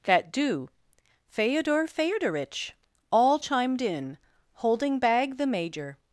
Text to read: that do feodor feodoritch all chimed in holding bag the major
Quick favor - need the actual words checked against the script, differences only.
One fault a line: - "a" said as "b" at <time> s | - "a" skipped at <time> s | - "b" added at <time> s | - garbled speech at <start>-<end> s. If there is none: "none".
none